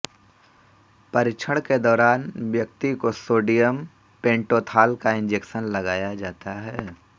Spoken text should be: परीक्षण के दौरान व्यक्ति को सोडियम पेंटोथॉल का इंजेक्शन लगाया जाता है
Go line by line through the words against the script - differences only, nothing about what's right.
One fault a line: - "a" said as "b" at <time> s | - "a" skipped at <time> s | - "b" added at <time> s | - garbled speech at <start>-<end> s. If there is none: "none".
none